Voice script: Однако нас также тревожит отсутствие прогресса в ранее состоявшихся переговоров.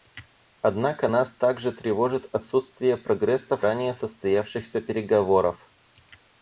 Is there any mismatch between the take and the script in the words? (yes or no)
no